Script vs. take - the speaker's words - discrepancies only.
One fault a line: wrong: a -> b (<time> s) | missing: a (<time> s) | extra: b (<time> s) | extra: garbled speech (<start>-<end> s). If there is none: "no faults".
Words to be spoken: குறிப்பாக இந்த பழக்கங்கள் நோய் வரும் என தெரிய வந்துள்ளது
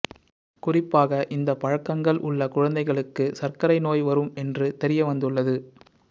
extra: உள்ள குழந்தைகளுக்கு சர்க்கரை (2.2 s)
wrong: என -> என்று (4.4 s)